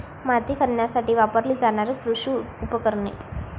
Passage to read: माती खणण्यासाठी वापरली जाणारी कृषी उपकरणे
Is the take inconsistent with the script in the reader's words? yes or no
no